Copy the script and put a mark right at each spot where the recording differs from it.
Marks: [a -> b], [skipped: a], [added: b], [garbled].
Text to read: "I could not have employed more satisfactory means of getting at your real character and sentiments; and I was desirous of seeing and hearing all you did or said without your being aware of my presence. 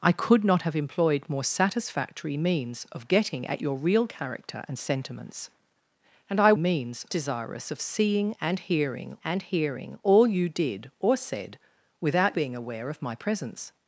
"I could not have employed more satisfactory means of getting at your real character and sentiments; and I [was -> means] desirous of seeing and hearing [added: and hearing] all you did or said without [skipped: your] being aware of my presence.